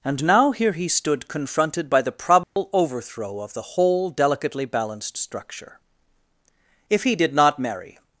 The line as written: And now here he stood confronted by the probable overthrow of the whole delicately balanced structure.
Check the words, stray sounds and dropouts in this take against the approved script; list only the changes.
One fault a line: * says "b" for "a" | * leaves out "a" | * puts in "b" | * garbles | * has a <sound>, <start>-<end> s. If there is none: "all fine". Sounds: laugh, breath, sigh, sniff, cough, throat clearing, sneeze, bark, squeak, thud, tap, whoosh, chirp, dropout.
* has a dropout, 2.4-2.6 s
* puts in "If he did not marry"